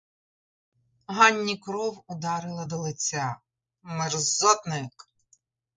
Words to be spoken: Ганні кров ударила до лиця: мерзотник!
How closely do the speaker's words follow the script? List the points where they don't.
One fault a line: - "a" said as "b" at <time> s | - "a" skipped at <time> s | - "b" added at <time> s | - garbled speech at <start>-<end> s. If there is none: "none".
none